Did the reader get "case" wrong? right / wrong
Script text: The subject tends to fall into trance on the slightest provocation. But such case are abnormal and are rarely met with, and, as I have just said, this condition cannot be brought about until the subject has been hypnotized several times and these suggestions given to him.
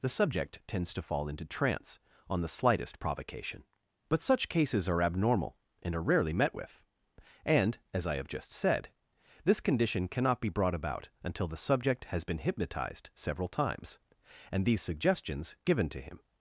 wrong